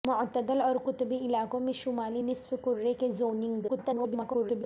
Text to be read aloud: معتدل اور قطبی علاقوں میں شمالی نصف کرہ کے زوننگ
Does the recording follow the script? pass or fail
fail